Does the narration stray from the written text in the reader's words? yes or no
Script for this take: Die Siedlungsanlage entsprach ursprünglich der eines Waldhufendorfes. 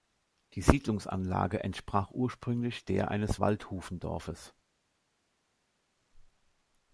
no